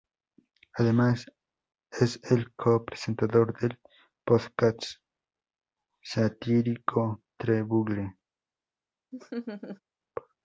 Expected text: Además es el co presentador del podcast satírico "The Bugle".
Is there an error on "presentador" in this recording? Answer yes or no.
no